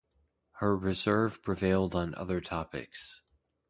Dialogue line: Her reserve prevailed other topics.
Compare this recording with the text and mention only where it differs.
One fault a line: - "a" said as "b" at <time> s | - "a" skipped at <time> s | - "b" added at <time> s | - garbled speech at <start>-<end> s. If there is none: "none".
- "on" added at 1.9 s